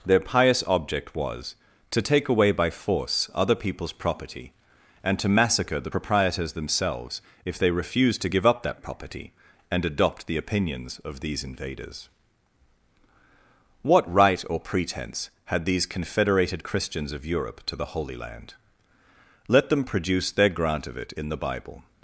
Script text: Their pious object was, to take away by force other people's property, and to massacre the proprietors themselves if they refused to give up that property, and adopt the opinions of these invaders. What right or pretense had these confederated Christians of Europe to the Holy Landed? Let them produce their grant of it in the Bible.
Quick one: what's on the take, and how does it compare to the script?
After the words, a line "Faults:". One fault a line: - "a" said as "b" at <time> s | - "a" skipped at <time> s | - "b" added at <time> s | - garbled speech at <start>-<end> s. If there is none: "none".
Their pious object was, to take away by force other people's property, and to massacre the proprietors themselves if they refused to give up that property, and adopt the opinions of these invaders. What right or pretense had these confederated Christians of Europe to the Holy Land? Let them produce their grant of it in the Bible.
Faults:
- "Landed" said as "Land" at 18.2 s